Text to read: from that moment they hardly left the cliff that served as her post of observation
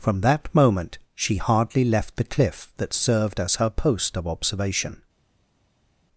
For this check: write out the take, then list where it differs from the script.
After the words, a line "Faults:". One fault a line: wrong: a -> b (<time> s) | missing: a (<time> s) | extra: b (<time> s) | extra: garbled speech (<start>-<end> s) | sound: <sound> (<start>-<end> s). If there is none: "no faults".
from that moment she hardly left the cliff that served as her post of observation
Faults:
wrong: they -> she (1.1 s)